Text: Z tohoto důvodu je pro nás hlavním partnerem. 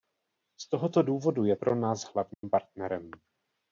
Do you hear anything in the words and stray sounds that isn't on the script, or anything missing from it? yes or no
yes